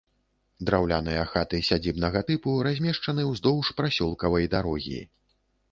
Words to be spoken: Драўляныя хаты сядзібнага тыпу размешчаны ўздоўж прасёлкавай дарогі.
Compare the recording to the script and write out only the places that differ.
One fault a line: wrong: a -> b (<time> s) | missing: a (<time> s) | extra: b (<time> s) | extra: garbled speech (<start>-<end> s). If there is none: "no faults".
no faults